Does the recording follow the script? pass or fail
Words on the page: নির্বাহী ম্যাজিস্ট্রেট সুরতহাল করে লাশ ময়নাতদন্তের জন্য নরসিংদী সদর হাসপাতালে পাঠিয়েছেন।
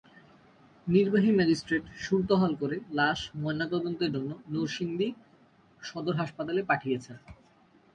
pass